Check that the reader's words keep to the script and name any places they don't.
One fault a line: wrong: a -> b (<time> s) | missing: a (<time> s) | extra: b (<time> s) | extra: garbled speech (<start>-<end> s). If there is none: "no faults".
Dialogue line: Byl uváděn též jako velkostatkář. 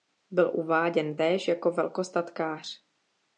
no faults